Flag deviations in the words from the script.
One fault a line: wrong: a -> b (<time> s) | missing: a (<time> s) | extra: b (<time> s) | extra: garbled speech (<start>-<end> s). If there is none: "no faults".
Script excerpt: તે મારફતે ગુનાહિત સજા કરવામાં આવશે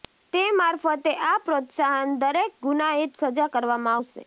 extra: આ પ્રોત્સાહન દરેક (1.2 s)